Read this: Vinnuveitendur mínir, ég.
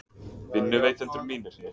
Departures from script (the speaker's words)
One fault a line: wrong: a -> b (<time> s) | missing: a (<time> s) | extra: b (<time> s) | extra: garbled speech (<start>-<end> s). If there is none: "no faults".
no faults